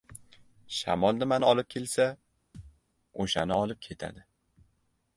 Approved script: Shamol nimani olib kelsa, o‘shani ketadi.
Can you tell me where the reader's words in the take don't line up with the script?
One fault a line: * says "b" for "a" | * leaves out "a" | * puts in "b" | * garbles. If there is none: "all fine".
* puts in "olib"